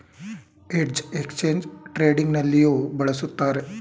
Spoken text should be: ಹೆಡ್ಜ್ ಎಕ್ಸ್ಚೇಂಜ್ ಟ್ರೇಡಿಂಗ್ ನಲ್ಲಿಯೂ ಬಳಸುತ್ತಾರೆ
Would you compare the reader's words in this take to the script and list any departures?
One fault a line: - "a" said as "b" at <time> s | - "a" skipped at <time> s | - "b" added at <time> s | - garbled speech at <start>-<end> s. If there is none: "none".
none